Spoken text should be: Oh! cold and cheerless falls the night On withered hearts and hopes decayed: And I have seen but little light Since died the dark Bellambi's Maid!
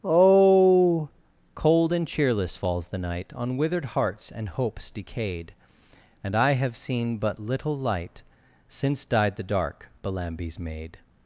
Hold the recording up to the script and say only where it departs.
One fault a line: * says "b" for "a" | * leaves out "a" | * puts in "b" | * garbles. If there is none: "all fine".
all fine